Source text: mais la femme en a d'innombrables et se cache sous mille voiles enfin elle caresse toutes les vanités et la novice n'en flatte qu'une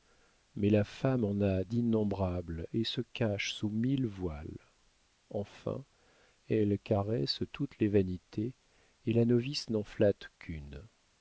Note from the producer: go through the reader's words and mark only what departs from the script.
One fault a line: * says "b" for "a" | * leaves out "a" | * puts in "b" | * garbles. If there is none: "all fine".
all fine